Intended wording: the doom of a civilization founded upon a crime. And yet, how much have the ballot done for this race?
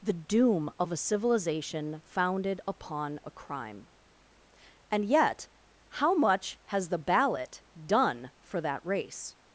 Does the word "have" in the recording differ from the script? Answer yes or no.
yes